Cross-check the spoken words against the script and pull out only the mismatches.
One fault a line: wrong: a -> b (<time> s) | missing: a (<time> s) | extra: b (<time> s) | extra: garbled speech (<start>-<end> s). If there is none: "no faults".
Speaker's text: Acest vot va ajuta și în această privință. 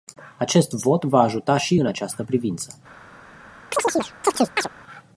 no faults